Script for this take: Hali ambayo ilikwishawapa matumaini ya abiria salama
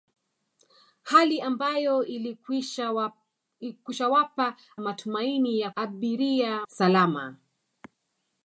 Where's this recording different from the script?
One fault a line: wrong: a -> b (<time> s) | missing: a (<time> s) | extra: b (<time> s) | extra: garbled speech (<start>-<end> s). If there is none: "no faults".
no faults